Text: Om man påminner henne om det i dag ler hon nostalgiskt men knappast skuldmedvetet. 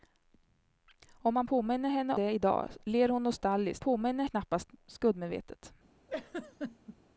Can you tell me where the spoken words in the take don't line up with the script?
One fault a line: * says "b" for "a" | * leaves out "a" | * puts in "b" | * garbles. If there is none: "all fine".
* leaves out "om"
* says "påminner" for "men"